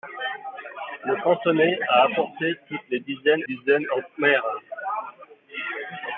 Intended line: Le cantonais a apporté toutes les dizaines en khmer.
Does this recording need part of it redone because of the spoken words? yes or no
yes